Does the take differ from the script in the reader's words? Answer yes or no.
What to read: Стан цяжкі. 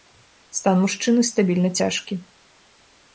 yes